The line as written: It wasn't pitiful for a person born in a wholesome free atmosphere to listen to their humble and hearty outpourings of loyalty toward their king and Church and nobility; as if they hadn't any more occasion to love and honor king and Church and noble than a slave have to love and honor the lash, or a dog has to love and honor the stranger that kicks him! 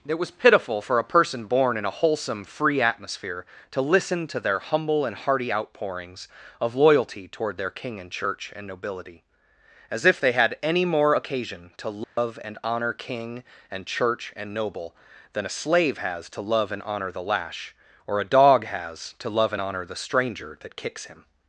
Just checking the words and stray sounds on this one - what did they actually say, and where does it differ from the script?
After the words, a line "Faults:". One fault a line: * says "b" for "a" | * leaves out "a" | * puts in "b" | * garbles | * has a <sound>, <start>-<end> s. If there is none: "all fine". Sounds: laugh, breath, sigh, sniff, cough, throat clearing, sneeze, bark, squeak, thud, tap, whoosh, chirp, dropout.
It was pitiful for a person born in a wholesome free atmosphere to listen to their humble and hearty outpourings of loyalty toward their king and Church and nobility; as if they had any more occasion to love and honor king and Church and noble than a slave has to love and honor the lash, or a dog has to love and honor the stranger that kicks him!
Faults:
* says "was" for "wasn't"
* says "had" for "hadn't"
* has a dropout, 12.0-12.2 s
* says "has" for "have"